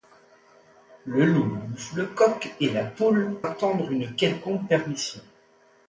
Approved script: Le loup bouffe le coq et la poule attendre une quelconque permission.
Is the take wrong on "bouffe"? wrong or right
right